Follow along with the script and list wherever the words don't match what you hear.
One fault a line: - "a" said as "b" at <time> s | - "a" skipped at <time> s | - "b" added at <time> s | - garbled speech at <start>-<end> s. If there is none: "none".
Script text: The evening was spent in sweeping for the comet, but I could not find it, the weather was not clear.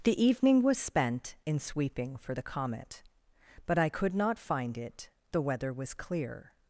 - "not" skipped at 5.9 s